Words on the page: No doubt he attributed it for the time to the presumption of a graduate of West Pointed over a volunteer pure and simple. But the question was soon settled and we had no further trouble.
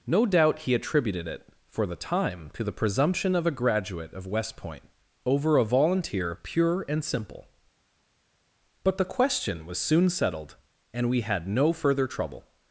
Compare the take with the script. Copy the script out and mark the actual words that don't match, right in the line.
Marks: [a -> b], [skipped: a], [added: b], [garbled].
No doubt he attributed it for the time to the presumption of a graduate of West [Pointed -> Point] over a volunteer pure and simple. But the question was soon settled and we had no further trouble.